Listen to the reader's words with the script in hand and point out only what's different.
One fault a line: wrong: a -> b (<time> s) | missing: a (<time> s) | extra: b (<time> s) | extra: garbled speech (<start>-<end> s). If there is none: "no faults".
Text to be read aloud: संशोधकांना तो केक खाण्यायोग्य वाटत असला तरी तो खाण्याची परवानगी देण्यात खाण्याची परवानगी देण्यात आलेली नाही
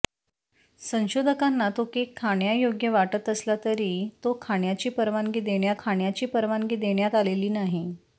no faults